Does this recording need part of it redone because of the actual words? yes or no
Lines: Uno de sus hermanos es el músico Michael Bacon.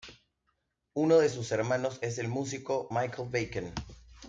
no